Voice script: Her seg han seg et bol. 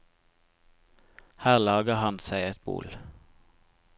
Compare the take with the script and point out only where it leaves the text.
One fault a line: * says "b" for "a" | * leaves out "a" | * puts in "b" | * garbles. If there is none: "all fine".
* says "lager" for "seg"